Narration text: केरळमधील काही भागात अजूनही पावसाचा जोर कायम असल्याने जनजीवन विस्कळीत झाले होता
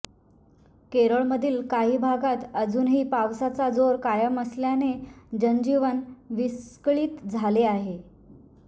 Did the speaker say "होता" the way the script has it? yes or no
no